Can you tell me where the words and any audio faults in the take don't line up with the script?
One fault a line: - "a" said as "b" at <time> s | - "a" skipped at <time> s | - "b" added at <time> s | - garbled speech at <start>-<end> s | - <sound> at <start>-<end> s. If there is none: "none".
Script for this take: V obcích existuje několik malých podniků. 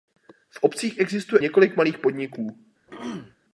- throat clearing at 2.9-3.4 s